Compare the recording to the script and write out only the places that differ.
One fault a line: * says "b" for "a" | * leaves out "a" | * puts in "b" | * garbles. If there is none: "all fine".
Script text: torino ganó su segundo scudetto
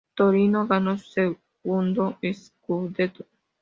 all fine